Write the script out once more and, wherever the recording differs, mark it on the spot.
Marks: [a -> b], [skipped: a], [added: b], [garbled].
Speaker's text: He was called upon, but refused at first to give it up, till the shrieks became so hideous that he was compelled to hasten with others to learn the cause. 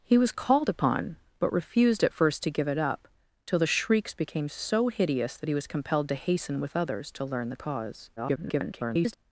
He was called upon, but refused at first to give it up, till the shrieks became so hideous that he was compelled to hasten with others to learn the cause. [garbled]